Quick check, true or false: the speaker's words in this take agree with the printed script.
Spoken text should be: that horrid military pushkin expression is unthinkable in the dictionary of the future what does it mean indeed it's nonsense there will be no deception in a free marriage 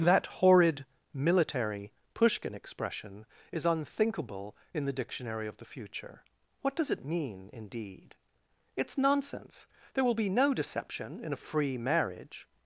true